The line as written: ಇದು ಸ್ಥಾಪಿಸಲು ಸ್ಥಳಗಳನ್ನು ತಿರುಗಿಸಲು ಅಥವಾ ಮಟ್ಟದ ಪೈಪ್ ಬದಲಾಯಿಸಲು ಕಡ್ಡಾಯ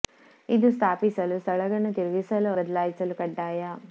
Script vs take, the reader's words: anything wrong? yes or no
yes